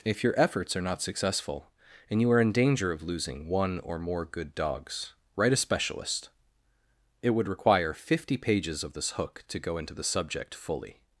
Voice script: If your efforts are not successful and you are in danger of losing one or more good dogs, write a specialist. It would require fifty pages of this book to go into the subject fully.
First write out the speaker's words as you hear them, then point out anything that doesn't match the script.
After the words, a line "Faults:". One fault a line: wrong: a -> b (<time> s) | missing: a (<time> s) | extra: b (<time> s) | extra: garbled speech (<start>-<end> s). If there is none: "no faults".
If your efforts are not successful and you are in danger of losing one or more good dogs, write a specialist. It would require fifty pages of this hook to go into the subject fully.
Faults:
wrong: book -> hook (9.1 s)